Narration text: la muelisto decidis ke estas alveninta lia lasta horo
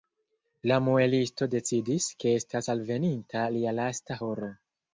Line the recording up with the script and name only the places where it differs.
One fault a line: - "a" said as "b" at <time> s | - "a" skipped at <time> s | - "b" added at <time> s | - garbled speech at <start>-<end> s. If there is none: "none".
none